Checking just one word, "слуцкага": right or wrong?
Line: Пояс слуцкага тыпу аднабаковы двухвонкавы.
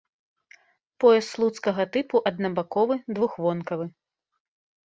right